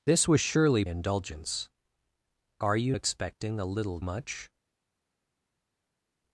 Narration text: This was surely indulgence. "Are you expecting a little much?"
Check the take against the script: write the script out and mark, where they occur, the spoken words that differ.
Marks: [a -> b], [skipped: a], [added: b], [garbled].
This was surely indulgence. "Are you expecting a little much?"